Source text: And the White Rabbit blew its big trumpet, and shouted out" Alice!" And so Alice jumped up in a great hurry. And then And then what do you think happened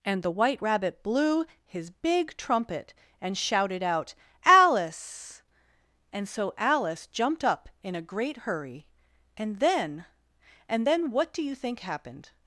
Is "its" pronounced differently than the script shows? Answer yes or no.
yes